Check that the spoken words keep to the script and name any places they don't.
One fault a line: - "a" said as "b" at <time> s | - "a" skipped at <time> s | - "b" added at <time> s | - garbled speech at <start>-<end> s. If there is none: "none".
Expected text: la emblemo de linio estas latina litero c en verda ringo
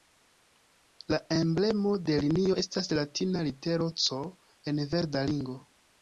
none